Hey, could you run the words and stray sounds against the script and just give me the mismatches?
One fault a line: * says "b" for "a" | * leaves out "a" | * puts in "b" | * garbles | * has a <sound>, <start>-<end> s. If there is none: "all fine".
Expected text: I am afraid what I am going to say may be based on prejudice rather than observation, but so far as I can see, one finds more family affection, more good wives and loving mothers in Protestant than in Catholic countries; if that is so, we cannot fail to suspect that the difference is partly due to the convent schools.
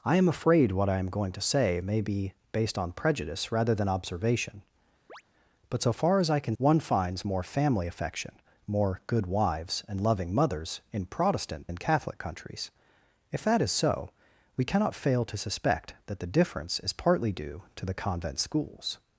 * has a chirp, 5.1-5.2 s
* leaves out "see"
* leaves out "than"